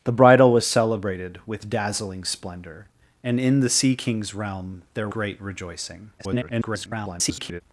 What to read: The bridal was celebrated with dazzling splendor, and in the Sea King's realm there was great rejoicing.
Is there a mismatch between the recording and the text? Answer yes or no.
yes